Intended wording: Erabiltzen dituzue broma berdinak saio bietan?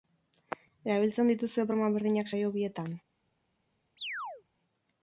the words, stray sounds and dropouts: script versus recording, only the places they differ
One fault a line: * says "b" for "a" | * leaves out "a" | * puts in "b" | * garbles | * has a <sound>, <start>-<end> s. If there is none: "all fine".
* has a chirp, 4.0-4.4 s